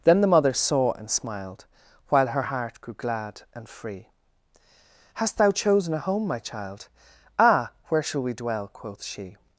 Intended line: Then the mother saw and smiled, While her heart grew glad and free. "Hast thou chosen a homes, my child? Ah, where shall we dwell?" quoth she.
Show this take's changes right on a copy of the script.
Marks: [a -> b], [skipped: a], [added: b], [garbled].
Then the mother saw and smiled, While her heart grew glad and free. "Hast thou chosen a [homes, -> home] my child? Ah, where shall we dwell?" quoth she.